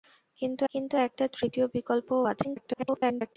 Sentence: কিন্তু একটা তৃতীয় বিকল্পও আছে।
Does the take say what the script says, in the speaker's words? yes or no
no